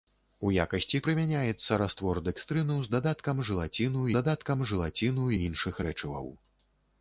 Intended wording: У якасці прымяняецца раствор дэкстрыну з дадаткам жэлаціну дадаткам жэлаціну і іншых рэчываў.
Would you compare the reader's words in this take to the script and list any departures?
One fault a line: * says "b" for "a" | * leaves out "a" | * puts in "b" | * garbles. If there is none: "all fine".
all fine